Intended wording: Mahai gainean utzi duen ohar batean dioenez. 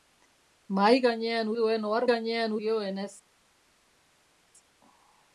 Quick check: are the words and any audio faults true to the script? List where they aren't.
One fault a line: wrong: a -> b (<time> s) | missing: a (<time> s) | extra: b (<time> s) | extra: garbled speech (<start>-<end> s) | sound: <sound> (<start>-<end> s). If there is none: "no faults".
missing: utzi (1.5 s)
wrong: batean -> gainean (2.1 s)